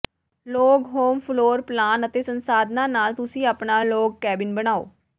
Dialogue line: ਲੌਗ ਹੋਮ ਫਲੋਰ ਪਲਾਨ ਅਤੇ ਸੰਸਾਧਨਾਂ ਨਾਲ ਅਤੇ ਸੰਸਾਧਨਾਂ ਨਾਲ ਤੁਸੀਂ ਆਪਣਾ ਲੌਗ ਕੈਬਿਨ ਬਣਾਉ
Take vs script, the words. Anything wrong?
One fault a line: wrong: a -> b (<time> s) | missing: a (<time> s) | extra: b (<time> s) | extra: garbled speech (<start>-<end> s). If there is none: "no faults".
missing: ਅਤੇ ਸੰਸਾਧਨਾਂ ਨਾਲ (3.1 s)